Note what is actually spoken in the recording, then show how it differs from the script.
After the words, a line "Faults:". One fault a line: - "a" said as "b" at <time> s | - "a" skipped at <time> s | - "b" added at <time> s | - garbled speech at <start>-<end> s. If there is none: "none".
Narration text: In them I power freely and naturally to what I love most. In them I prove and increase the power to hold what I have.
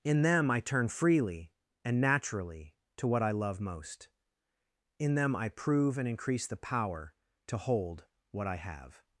In them I turn freely and naturally to what I love most. In them I prove and increase the power to hold what I have.
Faults:
- "power" said as "turn" at 0.6 s